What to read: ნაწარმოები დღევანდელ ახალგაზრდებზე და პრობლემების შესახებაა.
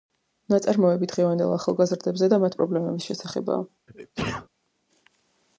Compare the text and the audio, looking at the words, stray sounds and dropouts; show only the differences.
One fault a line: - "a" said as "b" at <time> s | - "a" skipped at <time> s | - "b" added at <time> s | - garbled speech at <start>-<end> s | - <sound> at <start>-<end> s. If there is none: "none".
- "მათ" added at 2.5 s
- sneeze at 3.9-4.5 s